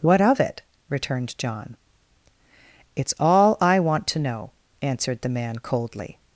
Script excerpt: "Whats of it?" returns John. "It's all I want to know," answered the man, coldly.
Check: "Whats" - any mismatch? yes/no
yes